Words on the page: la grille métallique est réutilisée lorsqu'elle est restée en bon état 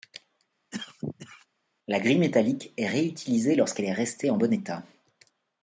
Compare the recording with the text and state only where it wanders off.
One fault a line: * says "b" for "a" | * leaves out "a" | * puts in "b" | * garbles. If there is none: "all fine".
all fine